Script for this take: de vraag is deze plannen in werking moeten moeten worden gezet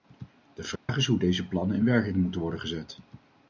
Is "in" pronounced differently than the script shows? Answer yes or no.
no